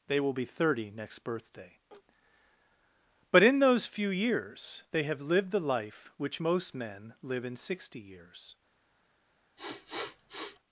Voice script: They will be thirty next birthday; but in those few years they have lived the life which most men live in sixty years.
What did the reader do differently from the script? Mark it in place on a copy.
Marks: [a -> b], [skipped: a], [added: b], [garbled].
They will be thirty next birthday; but in those few years they have lived the life which most men live in sixty years.